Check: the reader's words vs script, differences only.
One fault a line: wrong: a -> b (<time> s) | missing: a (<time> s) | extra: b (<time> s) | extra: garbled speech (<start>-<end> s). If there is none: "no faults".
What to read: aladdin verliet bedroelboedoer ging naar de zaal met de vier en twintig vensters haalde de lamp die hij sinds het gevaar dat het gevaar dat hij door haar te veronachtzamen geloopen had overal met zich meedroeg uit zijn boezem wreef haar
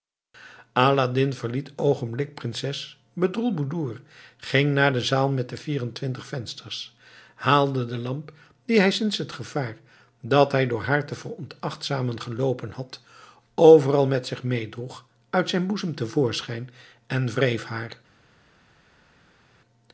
extra: oogenblikkelijk prinses (1.8 s)
missing: het gevaar dat (10.5 s)
extra: te voorschijn en (15.9 s)